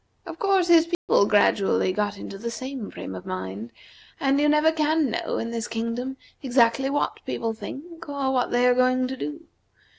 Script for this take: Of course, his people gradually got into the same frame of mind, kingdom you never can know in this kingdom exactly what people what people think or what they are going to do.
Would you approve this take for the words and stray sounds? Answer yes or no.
no